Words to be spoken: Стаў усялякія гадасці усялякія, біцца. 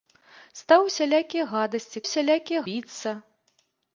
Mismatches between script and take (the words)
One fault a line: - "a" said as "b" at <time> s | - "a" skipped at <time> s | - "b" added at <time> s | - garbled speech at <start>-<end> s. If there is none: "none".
none